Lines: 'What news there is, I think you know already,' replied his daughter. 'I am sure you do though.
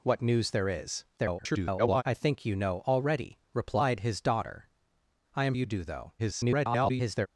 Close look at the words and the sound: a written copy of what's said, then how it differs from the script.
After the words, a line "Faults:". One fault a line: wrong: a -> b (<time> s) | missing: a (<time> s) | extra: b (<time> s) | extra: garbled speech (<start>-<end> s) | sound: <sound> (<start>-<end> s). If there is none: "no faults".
'What news there is, [garbled] I think you know already,' replied his daughter. 'I am you do though. [garbled]
Faults:
extra: garbled speech (1.2-2.0 s)
missing: sure (5.5 s)
extra: garbled speech (6.2-7.3 s)